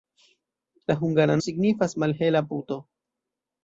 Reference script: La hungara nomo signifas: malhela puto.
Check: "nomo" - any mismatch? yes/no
yes